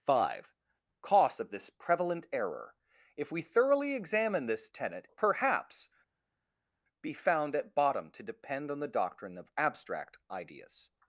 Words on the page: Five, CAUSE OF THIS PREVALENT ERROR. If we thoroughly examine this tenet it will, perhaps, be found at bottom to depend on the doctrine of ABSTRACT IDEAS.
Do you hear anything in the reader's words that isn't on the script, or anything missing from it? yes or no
yes